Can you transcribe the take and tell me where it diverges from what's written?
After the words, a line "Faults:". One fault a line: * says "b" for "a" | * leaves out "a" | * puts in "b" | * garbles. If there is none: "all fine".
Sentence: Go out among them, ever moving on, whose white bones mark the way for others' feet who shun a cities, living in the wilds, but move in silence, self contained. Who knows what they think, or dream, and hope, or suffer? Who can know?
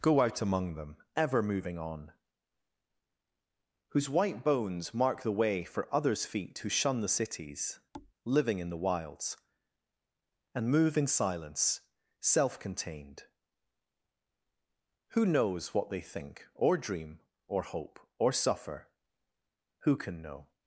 Go out among them, ever moving on, whose white bones mark the way for others' feet who shun the cities, living in the wilds, and move in silence, self contained. Who knows what they think, or dream, or hope, or suffer? Who can know?
Faults:
* says "the" for "a"
* says "and" for "but"
* says "or" for "and"